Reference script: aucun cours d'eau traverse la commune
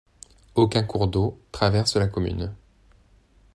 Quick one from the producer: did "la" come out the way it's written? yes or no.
yes